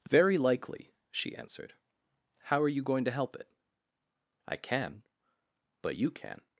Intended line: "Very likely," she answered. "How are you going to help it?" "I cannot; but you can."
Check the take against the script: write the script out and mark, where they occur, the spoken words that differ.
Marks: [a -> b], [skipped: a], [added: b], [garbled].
"Very likely," she answered. "How are you going to help it?" "I [cannot; -> can] but you can."